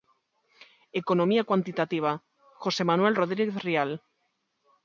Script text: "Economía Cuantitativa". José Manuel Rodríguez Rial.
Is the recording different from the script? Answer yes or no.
no